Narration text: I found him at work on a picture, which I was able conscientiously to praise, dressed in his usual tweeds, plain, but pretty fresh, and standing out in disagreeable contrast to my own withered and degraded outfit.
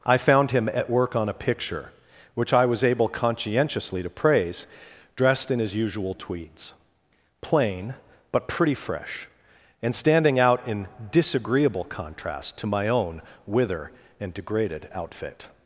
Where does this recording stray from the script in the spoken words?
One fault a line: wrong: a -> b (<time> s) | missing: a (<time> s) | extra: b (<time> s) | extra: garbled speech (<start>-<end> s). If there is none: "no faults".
wrong: withered -> wither (13.4 s)